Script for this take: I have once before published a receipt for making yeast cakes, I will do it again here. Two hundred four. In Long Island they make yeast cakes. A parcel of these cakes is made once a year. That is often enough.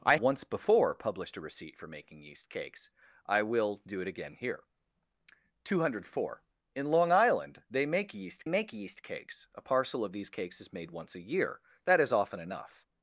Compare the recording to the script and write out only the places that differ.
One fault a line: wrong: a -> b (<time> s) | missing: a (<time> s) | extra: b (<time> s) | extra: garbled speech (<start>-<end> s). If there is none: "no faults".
missing: have (0.1 s)
extra: make yeast (8.5 s)